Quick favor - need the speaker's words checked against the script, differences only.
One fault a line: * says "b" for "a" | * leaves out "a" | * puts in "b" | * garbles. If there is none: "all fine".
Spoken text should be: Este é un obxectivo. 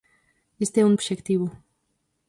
all fine